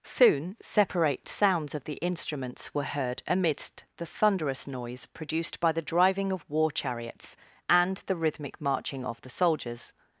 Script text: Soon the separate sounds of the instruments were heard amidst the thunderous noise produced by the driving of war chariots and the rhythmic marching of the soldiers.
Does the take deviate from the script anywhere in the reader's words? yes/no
yes